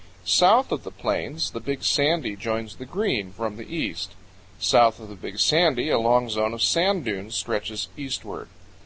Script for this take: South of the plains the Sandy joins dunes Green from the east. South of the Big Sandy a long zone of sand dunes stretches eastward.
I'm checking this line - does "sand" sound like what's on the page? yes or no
yes